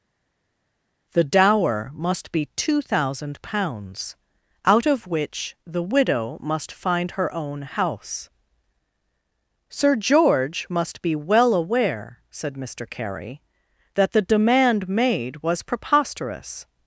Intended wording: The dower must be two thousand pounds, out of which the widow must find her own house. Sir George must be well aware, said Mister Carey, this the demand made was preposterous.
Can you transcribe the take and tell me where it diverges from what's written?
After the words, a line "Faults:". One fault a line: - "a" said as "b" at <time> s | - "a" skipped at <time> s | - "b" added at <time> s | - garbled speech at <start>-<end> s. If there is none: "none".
The dower must be two thousand pounds, out of which the widow must find her own house. Sir George must be well aware, said Mister Carey, that the demand made was preposterous.
Faults:
- "this" said as "that" at 13.9 s